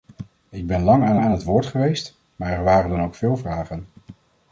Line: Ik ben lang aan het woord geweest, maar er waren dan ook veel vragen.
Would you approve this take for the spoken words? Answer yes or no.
no